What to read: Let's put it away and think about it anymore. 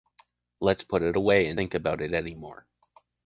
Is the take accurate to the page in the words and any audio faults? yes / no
yes